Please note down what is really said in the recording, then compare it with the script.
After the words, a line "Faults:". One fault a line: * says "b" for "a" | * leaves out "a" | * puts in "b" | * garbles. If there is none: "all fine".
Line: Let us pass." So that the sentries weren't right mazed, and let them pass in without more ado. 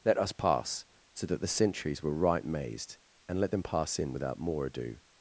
Let us pass." So that the sentries were right mazed, and let them pass in without more ado.
Faults:
* says "were" for "weren't"